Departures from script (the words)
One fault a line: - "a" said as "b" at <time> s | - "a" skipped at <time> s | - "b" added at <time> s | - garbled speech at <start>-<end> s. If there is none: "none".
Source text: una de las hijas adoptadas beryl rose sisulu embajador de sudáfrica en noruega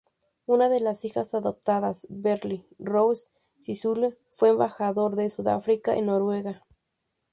- "fue" added at 4.3 s